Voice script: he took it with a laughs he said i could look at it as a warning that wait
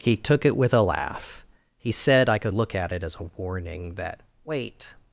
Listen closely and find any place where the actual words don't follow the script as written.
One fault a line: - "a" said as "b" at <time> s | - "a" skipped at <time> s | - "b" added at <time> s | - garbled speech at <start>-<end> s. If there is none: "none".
- "laughs" said as "laugh" at 0.8 s